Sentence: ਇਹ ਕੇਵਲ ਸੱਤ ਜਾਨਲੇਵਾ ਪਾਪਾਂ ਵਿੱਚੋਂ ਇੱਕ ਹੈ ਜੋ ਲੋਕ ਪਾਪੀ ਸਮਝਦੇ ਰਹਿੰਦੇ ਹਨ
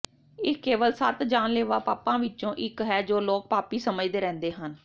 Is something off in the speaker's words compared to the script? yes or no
no